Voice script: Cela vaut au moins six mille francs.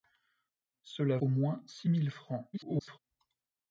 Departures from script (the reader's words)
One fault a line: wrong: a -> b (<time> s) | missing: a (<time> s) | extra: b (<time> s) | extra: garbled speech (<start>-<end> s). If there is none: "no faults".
missing: vaut (1.2 s)
extra: garbled speech (2.5-3.0 s)